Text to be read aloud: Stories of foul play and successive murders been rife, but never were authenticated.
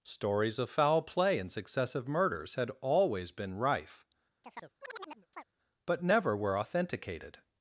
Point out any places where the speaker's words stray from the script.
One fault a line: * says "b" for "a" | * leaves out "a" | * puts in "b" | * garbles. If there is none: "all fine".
* puts in "had always"